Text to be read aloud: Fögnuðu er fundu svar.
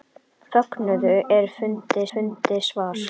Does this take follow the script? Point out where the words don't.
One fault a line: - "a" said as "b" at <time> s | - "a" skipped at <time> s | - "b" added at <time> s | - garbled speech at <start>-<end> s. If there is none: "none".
- "fundu" added at 2.1 s